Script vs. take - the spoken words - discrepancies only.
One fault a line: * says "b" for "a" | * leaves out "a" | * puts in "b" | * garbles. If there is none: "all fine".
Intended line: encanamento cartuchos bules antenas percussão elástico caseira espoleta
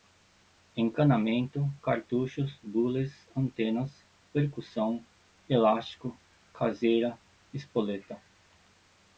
all fine